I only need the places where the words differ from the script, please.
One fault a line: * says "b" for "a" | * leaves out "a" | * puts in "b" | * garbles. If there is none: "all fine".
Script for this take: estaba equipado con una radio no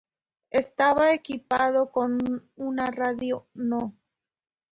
all fine